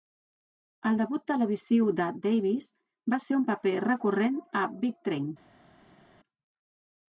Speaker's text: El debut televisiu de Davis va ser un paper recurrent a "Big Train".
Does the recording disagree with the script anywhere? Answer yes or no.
no